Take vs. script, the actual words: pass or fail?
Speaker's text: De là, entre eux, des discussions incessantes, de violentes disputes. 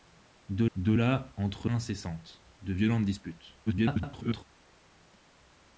fail